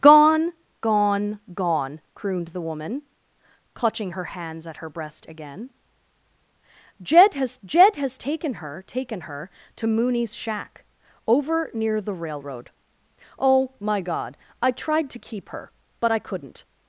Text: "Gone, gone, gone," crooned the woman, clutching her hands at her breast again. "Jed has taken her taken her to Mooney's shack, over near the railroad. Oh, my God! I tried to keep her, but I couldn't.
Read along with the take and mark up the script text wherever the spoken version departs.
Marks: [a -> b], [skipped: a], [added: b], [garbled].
"Gone, gone, gone," crooned the woman, clutching her hands at her breast again. "Jed has [added: jed has] taken her taken her to Mooney's shack, over near the railroad. Oh, my God! I tried to keep her, but I couldn't.